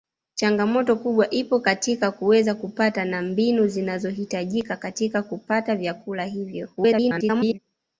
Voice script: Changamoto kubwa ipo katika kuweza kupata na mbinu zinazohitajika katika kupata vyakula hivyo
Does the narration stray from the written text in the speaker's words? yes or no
yes